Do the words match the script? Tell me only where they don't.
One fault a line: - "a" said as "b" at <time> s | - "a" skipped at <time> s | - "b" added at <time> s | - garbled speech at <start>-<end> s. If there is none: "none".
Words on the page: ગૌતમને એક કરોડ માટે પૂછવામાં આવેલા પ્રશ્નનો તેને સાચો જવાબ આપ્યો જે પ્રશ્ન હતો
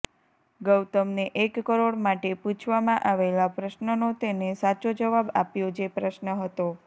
none